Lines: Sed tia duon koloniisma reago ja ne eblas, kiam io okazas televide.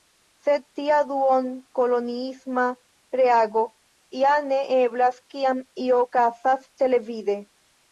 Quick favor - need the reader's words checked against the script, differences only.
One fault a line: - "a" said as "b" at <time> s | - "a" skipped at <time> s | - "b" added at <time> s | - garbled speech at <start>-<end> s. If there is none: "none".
none